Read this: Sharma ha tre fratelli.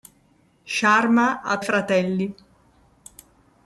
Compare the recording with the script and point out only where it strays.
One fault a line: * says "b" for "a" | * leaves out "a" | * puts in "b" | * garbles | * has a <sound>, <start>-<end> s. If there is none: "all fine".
* leaves out "tre"